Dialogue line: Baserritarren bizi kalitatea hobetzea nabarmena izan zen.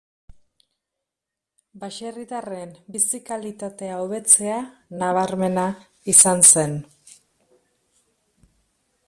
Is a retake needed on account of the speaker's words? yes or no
no